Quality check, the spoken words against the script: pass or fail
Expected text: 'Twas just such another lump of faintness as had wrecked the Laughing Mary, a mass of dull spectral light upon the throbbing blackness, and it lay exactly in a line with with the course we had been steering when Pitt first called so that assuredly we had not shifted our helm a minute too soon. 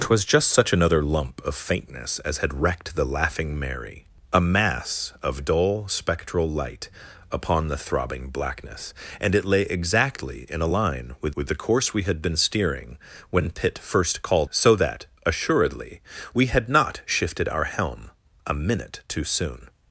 pass